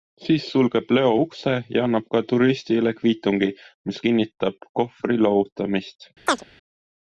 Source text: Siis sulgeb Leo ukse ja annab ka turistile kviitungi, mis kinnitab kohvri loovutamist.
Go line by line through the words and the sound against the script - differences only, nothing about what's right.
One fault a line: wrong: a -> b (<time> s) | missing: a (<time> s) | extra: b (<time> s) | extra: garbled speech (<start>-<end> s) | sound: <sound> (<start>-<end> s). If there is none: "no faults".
sound: chirp (6.3-6.4 s)